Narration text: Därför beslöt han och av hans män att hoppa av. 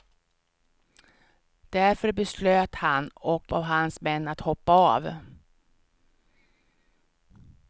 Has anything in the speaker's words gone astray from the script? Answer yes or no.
no